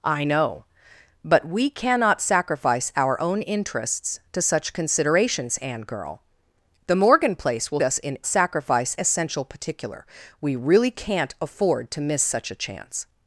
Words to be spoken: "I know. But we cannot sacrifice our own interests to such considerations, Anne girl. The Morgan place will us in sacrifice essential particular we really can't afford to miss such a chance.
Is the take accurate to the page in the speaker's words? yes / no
yes